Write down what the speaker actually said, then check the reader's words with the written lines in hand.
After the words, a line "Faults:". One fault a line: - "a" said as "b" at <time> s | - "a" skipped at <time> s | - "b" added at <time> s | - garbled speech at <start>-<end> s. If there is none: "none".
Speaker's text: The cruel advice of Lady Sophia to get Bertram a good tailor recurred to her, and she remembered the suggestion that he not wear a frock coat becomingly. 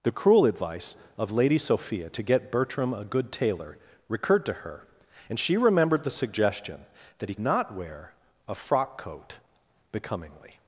The cruel advice of Lady Sophia to get Bertram a good tailor recurred to her, and she remembered the suggestion that he not wear a frock coat becomingly.
Faults:
none